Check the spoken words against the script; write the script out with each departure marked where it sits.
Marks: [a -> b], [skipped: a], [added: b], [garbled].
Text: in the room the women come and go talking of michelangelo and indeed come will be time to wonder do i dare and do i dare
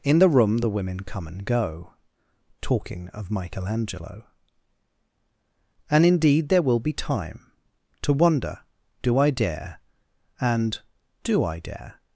in the room the women come and go talking of michelangelo and indeed [come -> there] will be time to wonder do i dare and do i dare